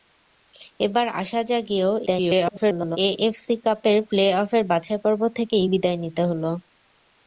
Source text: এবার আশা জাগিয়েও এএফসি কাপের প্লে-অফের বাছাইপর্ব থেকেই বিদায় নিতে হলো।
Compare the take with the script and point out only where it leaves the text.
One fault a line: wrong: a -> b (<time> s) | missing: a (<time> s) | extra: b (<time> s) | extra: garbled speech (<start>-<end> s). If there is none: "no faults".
extra: garbled speech (2.1-3.0 s)